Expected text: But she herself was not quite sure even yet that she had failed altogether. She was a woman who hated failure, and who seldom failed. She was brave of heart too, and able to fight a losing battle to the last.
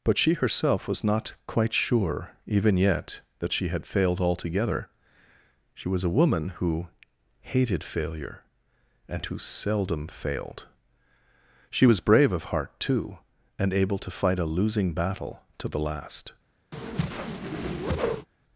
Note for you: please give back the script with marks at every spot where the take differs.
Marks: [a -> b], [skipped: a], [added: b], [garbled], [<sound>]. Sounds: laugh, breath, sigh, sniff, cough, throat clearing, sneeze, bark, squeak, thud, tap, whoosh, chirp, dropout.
But she herself was not quite sure even yet that she had failed altogether. She was a woman who hated failure, and who seldom failed. She was brave of heart too, and able to fight a losing battle to the last. [whoosh]